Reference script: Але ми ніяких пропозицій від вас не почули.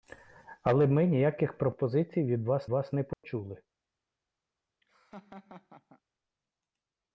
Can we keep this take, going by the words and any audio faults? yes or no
no